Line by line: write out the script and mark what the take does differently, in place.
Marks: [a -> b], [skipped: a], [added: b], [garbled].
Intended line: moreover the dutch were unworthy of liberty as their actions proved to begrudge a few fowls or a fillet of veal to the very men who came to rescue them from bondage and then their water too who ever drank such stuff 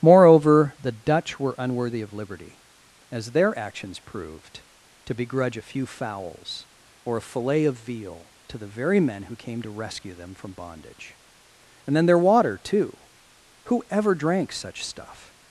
moreover the dutch were unworthy of liberty as their actions proved to begrudge a few fowls or a fillet of veal to the very men who came to rescue them from bondage and then their water too who ever drank such stuff